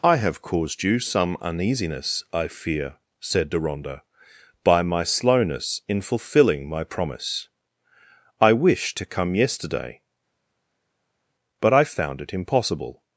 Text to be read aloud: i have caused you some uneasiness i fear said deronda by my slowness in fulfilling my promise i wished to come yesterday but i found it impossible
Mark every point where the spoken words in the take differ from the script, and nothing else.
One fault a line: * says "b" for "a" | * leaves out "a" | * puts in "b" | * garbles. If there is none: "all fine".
all fine